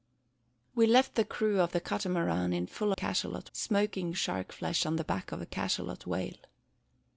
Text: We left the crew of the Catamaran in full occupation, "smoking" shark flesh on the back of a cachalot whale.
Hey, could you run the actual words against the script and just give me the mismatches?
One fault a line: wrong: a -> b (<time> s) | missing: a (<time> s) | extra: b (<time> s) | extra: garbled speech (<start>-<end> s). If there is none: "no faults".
wrong: occupation -> cachalot (2.9 s)